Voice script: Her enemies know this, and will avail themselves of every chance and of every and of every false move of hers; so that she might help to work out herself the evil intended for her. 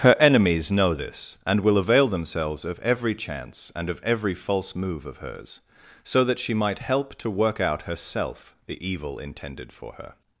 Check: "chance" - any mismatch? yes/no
no